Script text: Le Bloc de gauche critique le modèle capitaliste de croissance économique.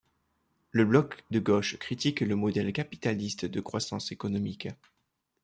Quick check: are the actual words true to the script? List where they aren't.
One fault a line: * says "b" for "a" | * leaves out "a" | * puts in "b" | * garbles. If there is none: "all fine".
all fine